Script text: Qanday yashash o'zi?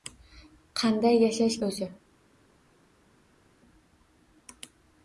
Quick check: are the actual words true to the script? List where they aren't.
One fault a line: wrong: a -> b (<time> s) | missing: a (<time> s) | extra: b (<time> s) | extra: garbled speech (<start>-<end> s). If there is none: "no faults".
no faults